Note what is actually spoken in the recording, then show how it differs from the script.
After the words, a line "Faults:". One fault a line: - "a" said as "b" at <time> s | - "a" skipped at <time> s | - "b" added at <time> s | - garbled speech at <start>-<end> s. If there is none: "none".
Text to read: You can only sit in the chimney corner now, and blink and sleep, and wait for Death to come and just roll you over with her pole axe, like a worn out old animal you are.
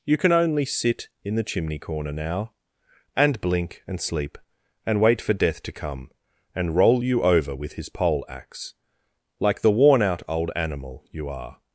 You can only sit in the chimney corner now, and blink and sleep, and wait for Death to come and roll you over with his pole axe, like the worn out old animal you are.
Faults:
- "just" skipped at 6.8 s
- "her" said as "his" at 7.7 s
- "a" said as "the" at 9.6 s